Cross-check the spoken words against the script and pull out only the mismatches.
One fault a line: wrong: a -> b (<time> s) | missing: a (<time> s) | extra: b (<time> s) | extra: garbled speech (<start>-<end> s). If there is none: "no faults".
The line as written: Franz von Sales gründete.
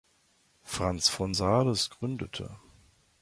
no faults